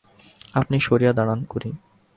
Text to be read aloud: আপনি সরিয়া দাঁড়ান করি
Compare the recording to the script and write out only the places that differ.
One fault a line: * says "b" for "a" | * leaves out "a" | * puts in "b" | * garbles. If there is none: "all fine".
all fine